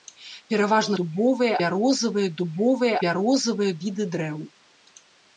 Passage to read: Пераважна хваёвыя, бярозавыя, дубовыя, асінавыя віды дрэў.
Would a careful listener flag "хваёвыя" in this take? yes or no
yes